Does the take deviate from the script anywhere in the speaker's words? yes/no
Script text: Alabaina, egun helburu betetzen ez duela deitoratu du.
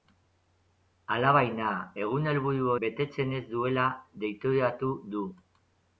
no